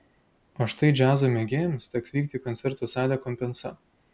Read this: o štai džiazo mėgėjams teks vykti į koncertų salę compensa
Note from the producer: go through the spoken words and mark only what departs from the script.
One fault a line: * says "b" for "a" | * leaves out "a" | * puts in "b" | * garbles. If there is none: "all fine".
all fine